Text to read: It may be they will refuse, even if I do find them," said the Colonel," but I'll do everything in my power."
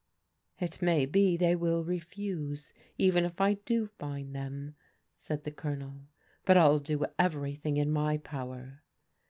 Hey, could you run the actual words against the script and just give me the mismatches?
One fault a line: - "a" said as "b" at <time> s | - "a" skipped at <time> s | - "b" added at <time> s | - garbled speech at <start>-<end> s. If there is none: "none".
none